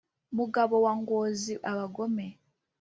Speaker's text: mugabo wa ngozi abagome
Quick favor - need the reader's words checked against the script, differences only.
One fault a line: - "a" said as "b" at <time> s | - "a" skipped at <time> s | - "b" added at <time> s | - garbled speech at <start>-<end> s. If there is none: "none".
none